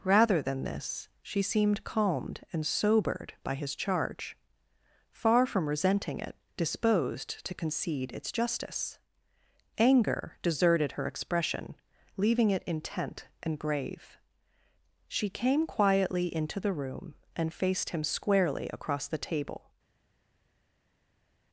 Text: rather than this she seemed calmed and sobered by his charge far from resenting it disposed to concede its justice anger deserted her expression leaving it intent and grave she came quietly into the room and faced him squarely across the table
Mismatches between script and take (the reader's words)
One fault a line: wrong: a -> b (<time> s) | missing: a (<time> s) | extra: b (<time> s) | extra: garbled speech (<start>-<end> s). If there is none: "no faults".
no faults